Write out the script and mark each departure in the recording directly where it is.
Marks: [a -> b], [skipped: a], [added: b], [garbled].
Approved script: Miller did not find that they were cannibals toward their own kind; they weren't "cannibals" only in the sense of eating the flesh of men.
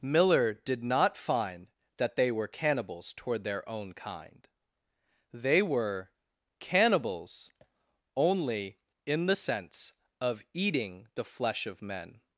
Miller did not find that they were cannibals toward their own kind; they [weren't -> were] "cannibals" only in the sense of eating the flesh of men.